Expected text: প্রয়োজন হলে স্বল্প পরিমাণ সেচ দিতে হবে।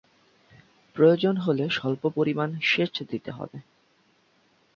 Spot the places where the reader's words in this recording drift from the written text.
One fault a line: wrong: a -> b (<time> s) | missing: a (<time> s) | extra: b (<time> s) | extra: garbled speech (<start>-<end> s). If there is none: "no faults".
no faults